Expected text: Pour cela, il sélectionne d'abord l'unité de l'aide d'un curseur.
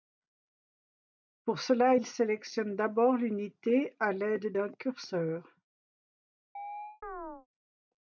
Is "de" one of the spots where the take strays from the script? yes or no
yes